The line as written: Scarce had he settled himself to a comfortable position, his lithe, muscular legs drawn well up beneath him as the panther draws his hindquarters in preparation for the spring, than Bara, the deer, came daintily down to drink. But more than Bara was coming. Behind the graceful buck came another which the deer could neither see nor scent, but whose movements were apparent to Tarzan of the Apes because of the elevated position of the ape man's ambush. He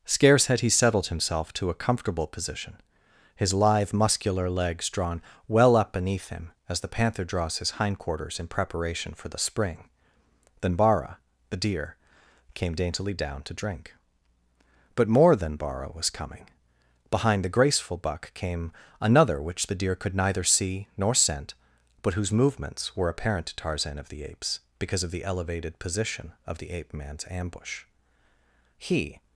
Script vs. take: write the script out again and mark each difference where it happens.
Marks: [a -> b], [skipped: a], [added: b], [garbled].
Scarce had he settled himself to a comfortable position, his lithe, muscular legs drawn well up beneath him as the panther draws his hindquarters in preparation for the spring, than Bara, the deer, came daintily down to drink. But more than Bara was coming. Behind the graceful buck came another which the deer could neither see nor scent, but whose movements were apparent to Tarzan of the Apes because of the elevated position of the ape man's ambush. He